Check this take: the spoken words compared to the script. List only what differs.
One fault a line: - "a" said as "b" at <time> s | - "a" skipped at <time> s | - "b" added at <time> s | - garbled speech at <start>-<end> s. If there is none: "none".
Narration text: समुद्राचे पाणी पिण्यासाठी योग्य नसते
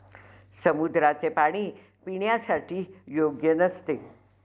none